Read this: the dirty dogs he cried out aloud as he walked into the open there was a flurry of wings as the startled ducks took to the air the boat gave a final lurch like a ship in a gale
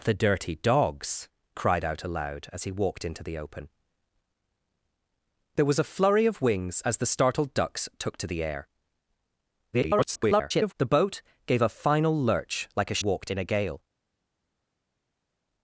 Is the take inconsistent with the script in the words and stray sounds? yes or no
yes